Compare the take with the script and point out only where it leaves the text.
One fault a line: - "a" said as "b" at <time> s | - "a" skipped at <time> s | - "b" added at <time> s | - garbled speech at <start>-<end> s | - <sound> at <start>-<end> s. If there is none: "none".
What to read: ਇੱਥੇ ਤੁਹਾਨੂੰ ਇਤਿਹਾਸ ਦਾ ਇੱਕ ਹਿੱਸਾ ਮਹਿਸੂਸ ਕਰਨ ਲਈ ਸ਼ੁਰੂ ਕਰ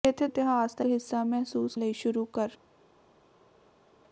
- "ਤੁਹਾਨੂੰ" skipped at 0.3 s
- "ਇੱਕ" skipped at 0.8 s
- "ਕਰਨ" skipped at 1.8 s